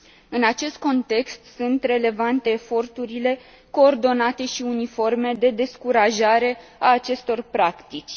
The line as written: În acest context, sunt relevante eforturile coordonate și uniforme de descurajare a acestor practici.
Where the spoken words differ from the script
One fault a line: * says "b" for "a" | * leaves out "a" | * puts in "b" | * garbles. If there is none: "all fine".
all fine